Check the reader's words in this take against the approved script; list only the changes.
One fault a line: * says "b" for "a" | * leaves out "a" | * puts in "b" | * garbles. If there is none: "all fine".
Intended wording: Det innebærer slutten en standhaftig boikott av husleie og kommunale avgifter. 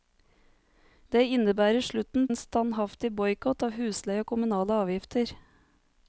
all fine